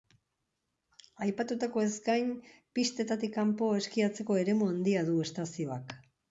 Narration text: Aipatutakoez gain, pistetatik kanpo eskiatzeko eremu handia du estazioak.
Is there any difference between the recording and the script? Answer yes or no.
no